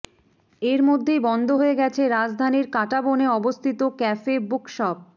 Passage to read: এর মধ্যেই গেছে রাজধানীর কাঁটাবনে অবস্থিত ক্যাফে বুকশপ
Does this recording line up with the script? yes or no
no